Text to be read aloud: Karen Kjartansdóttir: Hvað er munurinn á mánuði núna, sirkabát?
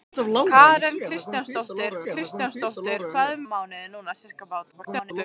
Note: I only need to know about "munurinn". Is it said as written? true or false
false